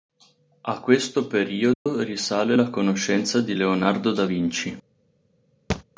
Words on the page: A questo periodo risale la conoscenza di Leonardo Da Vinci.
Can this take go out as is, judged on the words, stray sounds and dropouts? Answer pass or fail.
fail